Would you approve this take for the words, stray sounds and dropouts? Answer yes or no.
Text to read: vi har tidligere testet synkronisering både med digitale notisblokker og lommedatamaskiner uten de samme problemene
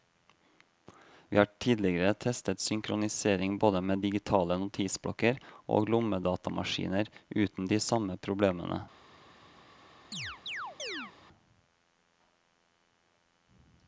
no